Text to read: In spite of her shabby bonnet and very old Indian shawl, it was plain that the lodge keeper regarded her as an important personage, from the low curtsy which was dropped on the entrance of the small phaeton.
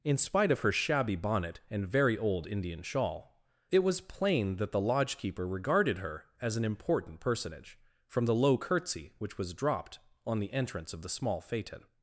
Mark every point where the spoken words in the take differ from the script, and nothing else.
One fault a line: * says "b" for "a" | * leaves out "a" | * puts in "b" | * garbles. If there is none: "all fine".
all fine